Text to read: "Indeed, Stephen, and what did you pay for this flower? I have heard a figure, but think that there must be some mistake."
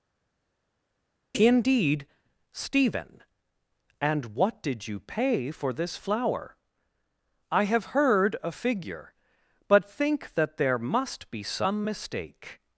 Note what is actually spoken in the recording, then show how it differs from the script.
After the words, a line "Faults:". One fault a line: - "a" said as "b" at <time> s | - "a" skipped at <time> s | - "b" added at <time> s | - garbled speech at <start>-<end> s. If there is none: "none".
"Indeed, Stephen, and what did you pay for this flower? I have heard a figure, but think that there must be some mistake."
Faults:
none